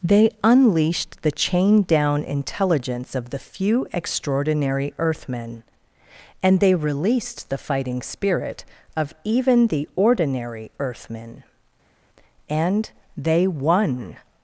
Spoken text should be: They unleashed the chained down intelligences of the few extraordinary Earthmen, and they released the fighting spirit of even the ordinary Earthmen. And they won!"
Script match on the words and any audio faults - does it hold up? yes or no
no